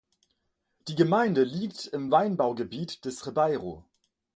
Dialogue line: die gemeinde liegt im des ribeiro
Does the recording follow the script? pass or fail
fail